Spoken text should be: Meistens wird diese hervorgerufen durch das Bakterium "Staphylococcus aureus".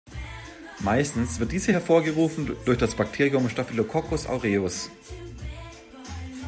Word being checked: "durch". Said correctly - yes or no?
yes